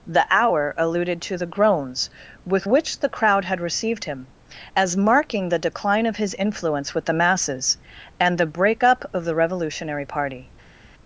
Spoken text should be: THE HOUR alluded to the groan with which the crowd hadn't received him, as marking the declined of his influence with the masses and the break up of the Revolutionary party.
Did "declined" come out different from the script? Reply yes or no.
yes